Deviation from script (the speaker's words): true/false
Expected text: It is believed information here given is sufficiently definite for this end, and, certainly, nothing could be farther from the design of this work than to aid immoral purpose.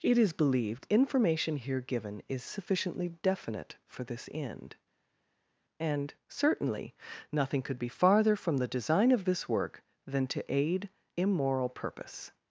false